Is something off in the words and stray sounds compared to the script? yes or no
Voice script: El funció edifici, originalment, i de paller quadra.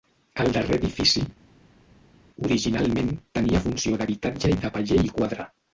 yes